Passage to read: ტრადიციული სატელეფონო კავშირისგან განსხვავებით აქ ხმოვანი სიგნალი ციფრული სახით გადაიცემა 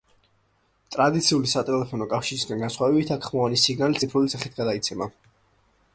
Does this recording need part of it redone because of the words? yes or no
no